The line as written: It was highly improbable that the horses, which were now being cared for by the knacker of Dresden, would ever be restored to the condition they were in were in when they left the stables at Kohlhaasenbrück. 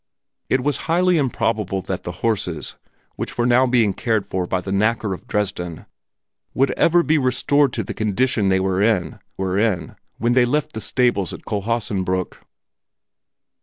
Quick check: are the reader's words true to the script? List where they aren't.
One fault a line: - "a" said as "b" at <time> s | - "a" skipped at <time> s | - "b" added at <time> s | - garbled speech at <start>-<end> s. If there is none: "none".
none